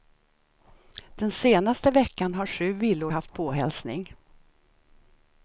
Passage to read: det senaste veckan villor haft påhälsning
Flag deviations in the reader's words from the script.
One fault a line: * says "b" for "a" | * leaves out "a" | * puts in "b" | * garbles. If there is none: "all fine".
* says "den" for "det"
* puts in "har sju"